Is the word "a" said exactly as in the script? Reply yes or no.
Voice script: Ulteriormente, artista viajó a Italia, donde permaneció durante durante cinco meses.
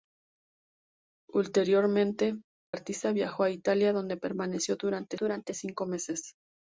yes